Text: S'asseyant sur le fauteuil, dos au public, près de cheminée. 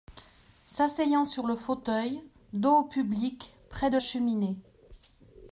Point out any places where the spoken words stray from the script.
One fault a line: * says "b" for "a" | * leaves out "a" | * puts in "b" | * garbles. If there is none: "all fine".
all fine